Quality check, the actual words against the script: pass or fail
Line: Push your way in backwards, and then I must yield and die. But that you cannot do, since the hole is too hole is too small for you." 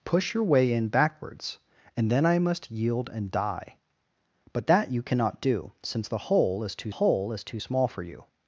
pass